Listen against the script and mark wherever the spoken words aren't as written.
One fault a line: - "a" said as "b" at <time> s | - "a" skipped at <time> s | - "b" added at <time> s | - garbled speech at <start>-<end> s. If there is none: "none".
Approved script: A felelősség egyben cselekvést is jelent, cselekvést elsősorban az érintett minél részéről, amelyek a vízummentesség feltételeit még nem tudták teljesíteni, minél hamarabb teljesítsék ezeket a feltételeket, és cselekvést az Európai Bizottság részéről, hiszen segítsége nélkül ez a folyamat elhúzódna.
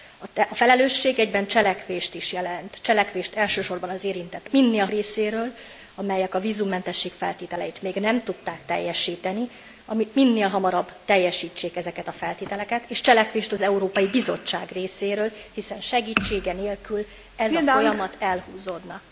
none